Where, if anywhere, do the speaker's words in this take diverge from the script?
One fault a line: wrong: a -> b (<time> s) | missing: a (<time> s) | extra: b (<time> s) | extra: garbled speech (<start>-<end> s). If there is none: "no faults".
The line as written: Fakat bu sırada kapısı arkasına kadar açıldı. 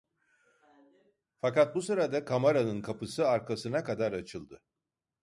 extra: kamaranın (2.2 s)